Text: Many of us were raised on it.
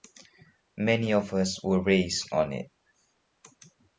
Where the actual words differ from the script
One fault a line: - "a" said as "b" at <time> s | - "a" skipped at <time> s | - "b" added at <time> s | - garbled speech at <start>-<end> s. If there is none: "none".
none